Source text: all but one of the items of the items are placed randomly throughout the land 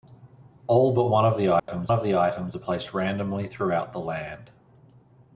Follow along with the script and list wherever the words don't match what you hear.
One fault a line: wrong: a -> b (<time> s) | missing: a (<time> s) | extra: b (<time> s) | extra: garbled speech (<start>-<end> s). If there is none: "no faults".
no faults